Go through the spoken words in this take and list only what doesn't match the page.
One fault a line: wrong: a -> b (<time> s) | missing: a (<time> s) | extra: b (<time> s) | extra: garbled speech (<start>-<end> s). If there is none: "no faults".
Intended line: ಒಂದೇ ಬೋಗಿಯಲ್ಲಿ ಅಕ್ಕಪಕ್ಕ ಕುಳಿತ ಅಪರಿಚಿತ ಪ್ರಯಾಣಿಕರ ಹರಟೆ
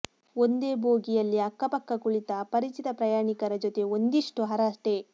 extra: ಜೊತೆ ಒಂದಿಷ್ಟು (3.6 s)